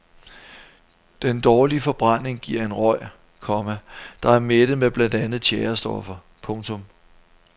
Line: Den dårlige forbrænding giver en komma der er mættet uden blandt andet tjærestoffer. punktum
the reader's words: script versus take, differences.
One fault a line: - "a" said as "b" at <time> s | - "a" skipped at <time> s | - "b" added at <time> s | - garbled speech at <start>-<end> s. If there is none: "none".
- "røg" added at 2.7 s
- "uden" said as "med" at 4.8 s